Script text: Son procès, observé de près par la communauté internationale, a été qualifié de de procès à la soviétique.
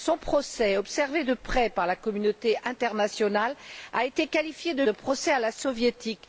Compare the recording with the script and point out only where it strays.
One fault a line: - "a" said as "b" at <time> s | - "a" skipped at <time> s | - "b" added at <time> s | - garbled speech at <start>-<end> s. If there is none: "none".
none